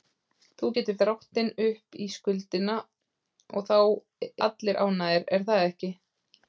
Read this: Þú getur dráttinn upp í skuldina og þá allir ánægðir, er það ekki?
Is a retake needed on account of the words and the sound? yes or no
no